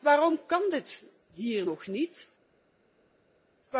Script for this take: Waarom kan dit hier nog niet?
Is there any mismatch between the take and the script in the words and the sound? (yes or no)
no